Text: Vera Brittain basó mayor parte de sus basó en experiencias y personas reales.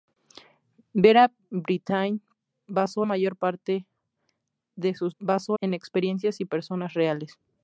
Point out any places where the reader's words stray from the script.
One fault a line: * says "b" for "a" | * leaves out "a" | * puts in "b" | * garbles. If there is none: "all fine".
all fine